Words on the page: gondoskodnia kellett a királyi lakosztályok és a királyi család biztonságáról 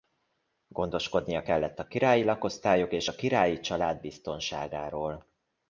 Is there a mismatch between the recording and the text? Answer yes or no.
no